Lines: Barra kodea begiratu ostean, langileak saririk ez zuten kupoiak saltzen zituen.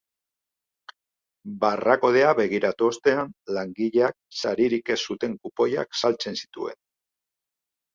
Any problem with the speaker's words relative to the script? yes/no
no